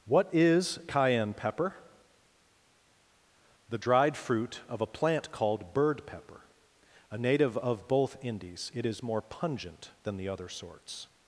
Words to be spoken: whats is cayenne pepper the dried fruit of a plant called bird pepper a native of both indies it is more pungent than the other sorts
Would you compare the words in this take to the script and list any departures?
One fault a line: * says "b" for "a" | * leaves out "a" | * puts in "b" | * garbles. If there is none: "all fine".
* says "what" for "whats"